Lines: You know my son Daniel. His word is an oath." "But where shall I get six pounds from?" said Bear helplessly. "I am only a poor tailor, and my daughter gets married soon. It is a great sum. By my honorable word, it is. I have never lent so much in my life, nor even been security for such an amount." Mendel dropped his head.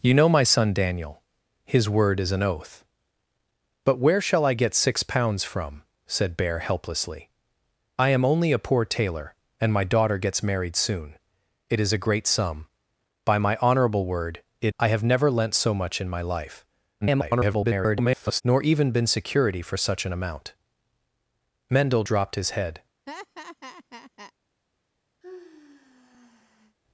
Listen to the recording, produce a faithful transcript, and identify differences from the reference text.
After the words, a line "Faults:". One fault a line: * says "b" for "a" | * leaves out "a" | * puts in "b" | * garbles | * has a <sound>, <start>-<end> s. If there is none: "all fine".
You know my son Daniel. His word is an oath." "But where shall I get six pounds from?" said Bear helplessly. "I am only a poor tailor, and my daughter gets married soon. It is a great sum. By my honorable word, it. I have never lent so much in my life, [garbled] nor even been security for such an amount." Mendel dropped his head.
Faults:
* leaves out "is"
* garbles
* has a laugh, 23.1-24.3 s
* has a sigh, 25.2-26.8 s